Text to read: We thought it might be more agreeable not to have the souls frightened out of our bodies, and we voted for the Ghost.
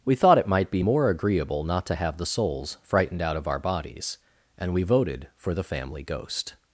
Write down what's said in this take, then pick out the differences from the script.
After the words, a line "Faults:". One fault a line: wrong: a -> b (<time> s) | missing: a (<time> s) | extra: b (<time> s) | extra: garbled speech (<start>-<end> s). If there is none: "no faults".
We thought it might be more agreeable not to have the souls frightened out of our bodies, and we voted for the Family Ghost.
Faults:
extra: Family (5.6 s)